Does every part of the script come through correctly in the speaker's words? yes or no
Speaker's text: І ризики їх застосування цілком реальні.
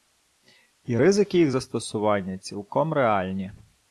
yes